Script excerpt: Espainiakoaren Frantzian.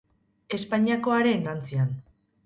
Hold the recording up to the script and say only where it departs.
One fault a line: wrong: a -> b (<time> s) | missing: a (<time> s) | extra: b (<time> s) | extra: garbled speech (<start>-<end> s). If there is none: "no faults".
no faults